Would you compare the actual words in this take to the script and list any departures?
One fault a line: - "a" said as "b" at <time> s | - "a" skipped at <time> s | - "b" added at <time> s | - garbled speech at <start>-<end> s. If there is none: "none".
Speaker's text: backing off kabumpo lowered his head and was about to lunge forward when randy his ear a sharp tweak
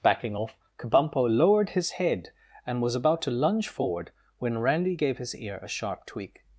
- "gave" added at 4.9 s